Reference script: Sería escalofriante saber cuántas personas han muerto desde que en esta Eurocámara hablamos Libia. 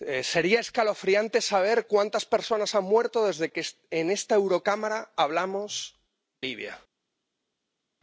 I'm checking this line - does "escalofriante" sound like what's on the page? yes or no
yes